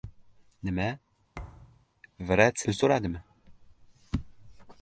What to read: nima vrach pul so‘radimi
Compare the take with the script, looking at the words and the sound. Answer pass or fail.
fail